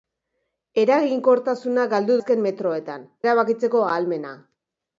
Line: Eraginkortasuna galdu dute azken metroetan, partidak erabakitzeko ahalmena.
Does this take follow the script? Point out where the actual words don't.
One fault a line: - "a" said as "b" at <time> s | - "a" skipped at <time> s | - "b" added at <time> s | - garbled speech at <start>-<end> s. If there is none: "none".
- "dute" skipped at 2.2 s
- "partidak" skipped at 3.1 s